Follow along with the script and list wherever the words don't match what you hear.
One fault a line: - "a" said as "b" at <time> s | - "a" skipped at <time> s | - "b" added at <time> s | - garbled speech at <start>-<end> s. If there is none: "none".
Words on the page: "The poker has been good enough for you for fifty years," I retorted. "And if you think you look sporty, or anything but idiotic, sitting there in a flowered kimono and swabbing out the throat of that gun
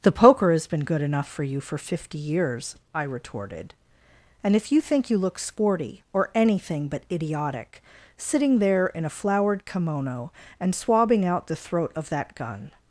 none